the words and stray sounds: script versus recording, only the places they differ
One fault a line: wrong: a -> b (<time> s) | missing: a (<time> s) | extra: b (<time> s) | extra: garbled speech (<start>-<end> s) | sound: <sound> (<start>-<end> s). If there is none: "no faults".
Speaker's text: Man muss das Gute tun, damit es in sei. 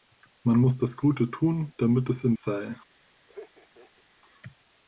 sound: laugh (3.3-4.0 s)